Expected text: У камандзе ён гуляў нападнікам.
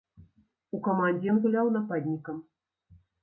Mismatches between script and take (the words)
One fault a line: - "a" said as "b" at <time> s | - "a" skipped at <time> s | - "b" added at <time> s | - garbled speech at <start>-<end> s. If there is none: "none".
none